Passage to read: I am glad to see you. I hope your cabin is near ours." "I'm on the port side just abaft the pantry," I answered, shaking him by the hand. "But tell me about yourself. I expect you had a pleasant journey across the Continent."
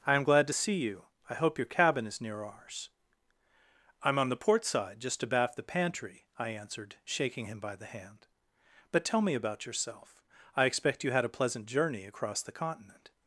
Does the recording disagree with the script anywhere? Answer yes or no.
no